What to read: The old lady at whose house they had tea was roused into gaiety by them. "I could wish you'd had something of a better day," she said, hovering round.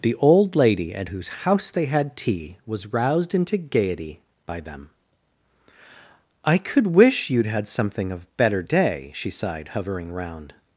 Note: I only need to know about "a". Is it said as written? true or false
false